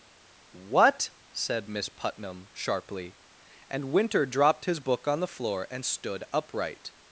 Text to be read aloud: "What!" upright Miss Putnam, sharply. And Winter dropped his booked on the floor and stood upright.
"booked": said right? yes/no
no